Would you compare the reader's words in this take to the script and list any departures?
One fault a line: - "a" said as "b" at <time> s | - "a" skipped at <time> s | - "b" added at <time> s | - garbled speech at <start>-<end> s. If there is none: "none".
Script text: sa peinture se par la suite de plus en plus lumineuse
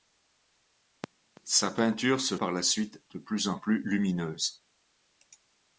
none